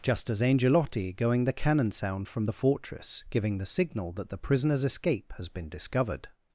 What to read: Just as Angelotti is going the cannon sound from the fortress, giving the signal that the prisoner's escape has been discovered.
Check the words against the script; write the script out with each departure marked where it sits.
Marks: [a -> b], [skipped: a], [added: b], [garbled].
Just as Angelotti [skipped: is] going the cannon sound from the fortress, giving the signal that the prisoner's escape has been discovered.